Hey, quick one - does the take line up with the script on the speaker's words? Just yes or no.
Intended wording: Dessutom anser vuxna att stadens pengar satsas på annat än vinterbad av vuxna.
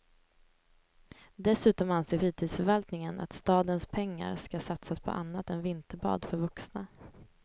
no